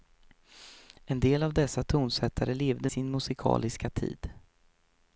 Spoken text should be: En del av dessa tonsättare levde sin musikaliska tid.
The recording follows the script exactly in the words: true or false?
true